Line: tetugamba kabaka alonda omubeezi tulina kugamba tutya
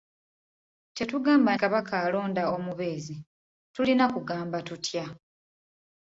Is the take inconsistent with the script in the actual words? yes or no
no